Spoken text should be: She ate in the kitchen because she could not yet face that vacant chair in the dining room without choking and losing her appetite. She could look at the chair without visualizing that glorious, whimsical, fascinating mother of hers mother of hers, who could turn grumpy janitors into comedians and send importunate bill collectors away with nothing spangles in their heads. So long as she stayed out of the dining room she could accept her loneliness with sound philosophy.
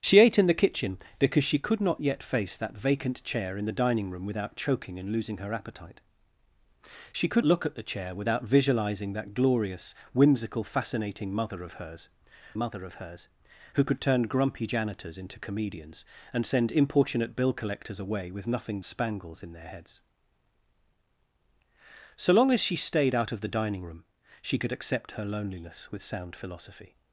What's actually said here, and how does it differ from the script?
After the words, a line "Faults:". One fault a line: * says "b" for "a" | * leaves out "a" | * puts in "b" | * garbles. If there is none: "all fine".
She ate in the kitchen because she could not yet face that vacant chair in the dining room without choking and losing her appetite. She could look at the chair without visualizing that glorious, whimsical, fascinating mother of hers mother of hers, who could turn grumpy janitors into comedians and send importunate bill collectors away with nothing spangles in their heads. So long as she stayed out of the dining room she could accept her loneliness with sound philosophy.
Faults:
all fine